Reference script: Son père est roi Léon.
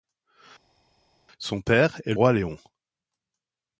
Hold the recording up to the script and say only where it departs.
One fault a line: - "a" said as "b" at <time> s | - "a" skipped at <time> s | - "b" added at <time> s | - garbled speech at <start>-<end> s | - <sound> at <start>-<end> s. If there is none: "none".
none